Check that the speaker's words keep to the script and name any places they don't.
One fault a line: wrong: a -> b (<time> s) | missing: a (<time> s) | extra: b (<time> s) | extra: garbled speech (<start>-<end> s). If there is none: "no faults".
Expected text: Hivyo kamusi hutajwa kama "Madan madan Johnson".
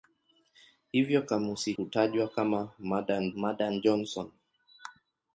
no faults